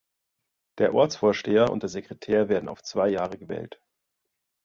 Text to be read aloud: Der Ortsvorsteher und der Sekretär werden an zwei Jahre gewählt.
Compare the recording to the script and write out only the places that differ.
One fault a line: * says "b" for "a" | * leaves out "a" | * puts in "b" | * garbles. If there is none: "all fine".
* says "auf" for "an"